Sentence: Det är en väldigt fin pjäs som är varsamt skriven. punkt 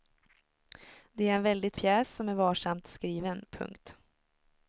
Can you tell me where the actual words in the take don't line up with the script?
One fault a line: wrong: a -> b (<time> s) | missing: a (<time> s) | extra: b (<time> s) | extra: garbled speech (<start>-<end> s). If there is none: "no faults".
missing: fin (1.8 s)